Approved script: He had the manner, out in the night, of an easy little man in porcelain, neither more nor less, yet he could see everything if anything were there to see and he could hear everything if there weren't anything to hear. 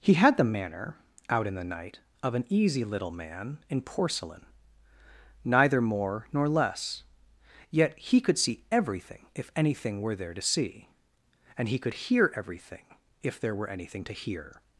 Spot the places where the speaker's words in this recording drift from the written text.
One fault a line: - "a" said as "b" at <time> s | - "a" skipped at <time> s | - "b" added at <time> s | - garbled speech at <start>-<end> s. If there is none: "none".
- "weren't" said as "were" at 13.5 s